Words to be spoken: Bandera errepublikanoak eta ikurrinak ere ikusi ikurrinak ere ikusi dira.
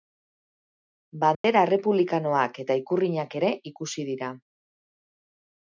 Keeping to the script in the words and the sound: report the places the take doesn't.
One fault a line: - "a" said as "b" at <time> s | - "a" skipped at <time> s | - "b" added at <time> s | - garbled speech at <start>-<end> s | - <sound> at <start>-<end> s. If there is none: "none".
- dropout at 1.3-1.4 s
- "ikurrinak ere ikusi" skipped at 4.1 s